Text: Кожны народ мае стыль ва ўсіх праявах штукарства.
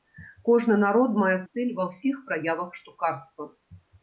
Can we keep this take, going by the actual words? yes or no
yes